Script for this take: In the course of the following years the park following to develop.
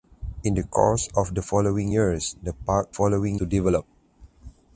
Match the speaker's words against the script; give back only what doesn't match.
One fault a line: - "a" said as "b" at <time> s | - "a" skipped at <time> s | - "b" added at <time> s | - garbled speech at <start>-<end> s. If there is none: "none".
none